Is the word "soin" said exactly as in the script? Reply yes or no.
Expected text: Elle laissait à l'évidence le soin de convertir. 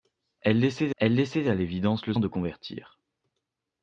no